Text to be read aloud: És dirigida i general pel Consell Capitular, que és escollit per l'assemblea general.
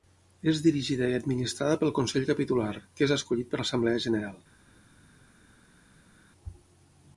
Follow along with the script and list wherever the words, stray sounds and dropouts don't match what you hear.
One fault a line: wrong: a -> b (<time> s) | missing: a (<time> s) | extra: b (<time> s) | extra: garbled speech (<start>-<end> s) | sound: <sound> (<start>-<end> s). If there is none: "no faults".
wrong: general -> administrada (1.2 s)